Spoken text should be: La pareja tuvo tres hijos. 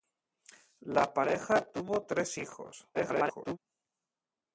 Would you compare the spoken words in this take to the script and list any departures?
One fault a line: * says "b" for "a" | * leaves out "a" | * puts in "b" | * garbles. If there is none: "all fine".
* garbles